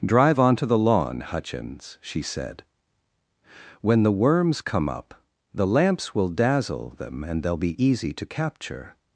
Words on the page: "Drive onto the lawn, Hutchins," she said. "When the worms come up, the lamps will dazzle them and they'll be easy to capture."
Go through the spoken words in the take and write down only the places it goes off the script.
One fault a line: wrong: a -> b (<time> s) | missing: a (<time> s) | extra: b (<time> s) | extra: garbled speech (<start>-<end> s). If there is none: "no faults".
no faults